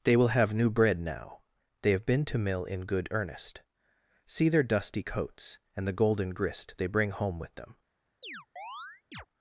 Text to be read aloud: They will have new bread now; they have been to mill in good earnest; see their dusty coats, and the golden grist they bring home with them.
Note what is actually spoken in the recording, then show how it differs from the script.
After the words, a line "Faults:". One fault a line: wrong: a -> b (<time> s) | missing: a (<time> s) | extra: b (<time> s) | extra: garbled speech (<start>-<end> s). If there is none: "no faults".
They will have new bread now; they have been to mill in good earnest; see their dusty coats, and the golden grist they bring home with them.
Faults:
no faults